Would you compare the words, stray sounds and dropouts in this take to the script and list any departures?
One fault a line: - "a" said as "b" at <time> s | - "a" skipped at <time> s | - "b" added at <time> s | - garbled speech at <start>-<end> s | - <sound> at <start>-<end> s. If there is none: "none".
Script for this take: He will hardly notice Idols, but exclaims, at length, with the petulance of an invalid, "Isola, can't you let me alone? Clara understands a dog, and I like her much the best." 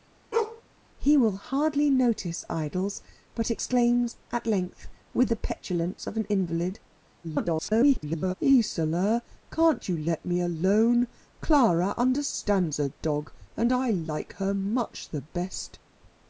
- bark at 0.3-0.6 s
- garbled speech at 7.2-8.3 s